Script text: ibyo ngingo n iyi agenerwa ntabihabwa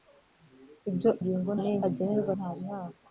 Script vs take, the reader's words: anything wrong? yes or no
no